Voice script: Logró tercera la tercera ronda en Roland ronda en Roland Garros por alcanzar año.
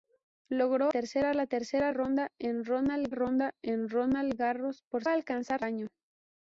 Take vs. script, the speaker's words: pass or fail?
pass